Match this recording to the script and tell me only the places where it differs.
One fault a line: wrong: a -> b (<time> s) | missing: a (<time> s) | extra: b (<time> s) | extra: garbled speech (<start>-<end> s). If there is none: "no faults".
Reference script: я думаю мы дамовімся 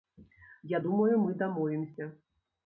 no faults